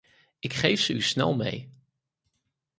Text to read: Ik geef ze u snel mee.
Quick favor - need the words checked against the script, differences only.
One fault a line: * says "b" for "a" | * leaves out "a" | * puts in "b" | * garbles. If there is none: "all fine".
all fine